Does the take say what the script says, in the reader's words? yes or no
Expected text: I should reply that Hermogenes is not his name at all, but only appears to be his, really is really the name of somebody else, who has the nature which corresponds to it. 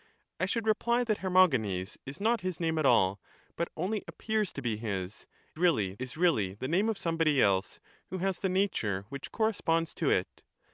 yes